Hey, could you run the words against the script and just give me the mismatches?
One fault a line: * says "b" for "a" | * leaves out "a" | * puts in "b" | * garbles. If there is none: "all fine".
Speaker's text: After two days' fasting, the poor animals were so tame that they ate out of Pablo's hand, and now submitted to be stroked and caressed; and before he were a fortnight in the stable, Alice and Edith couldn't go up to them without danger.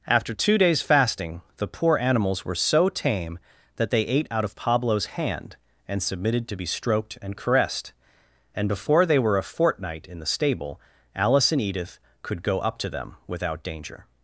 * leaves out "now"
* says "they" for "he"
* says "could" for "couldn't"